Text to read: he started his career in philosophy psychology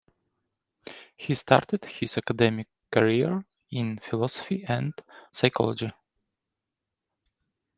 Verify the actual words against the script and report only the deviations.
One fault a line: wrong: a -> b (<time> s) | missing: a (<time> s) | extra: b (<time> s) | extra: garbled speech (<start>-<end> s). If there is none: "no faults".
extra: academic (2.2 s)
extra: and (4.6 s)